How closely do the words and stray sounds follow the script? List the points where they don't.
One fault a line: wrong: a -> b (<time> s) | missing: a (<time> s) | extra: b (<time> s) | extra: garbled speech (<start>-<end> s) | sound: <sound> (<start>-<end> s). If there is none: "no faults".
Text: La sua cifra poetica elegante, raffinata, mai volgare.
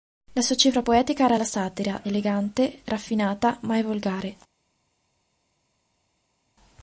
extra: era la satira (1.2 s)